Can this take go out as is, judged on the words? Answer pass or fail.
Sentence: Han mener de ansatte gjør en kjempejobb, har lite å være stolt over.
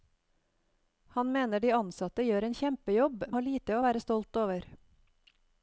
pass